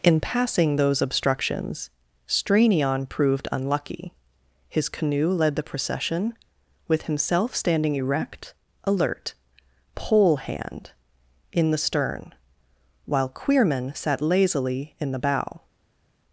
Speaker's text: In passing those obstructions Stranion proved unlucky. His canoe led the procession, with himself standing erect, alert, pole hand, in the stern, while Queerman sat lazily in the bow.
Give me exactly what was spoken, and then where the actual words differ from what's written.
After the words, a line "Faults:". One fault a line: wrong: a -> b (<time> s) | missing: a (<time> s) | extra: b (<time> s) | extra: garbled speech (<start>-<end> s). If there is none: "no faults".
In passing those obstructions Stranion proved unlucky. His canoe led the procession, with himself standing erect, alert, pole hand, in the stern, while Queerman sat lazily in the bow.
Faults:
no faults